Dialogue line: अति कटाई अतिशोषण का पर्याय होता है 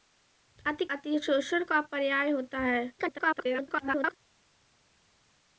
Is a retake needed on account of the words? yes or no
yes